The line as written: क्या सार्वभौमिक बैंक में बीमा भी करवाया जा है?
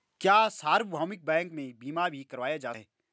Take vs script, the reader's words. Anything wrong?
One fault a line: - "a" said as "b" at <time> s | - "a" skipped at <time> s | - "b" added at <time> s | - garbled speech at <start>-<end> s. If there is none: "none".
none